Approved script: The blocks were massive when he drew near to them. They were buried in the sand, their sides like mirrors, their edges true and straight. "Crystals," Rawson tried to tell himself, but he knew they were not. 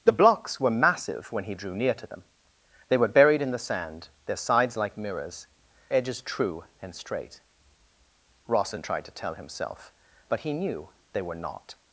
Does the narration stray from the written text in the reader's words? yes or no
yes